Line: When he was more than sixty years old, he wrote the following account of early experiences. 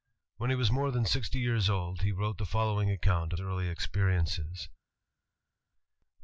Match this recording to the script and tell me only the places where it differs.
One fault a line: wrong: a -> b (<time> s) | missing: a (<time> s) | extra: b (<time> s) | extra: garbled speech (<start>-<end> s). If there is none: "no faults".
no faults